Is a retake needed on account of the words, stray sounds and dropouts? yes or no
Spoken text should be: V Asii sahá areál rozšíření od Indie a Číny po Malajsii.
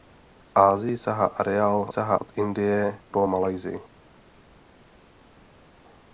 yes